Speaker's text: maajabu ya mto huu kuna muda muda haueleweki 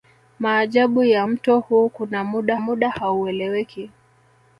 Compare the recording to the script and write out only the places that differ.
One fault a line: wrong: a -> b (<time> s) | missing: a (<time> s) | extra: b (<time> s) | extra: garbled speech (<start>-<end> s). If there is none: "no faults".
no faults